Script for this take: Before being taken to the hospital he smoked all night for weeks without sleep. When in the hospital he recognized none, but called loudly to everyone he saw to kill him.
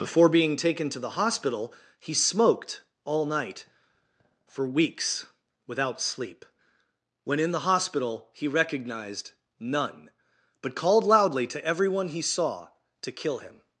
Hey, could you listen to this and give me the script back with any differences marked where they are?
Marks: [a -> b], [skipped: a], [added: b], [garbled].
Before being taken to the hospital he smoked all night for weeks without sleep. When in the hospital he recognized none, but called loudly to everyone he saw to kill him.